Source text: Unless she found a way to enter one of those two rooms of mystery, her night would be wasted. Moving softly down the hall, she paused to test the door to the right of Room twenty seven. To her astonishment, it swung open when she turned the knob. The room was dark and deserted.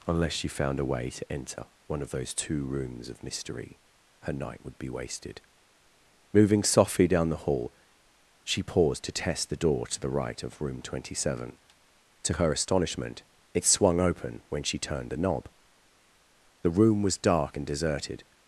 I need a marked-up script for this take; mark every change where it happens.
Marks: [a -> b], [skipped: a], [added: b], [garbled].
Unless she found a way to enter one of those two rooms of mystery, her night would be wasted. Moving softly down the hall, she paused to test the door to the right of Room twenty seven. To her astonishment, it swung open when she turned the knob. The room was dark and deserted.